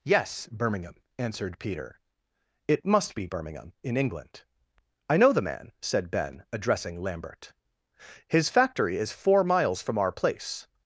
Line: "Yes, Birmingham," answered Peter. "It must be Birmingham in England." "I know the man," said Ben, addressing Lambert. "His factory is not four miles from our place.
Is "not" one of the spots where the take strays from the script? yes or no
yes